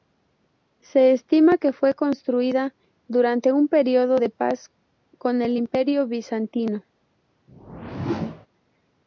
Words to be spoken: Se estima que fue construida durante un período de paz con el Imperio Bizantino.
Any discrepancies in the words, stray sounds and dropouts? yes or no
yes